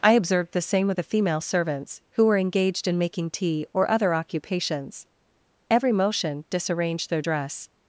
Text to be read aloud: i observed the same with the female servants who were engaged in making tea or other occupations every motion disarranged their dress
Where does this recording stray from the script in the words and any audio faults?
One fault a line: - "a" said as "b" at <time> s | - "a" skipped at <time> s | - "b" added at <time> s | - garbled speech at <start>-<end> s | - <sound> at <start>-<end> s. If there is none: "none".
none